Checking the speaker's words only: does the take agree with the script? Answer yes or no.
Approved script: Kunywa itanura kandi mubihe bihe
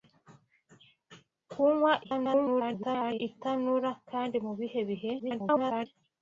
no